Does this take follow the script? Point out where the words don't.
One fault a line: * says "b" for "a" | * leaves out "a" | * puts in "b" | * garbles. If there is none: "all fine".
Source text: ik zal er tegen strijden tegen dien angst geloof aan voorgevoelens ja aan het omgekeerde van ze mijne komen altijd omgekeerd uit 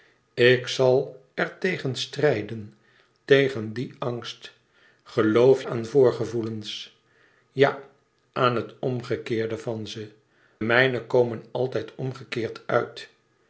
all fine